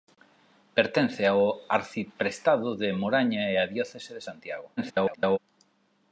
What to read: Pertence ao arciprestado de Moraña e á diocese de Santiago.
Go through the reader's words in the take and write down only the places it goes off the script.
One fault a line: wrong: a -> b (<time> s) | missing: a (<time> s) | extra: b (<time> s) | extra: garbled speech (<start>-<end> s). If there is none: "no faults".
extra: garbled speech (4.8-5.4 s)